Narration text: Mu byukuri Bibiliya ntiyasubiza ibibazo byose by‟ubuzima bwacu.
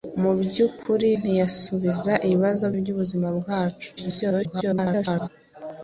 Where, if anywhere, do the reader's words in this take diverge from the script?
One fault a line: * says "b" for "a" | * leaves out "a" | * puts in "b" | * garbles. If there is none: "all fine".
* leaves out "Bibiliya"
* leaves out "byose"
* garbles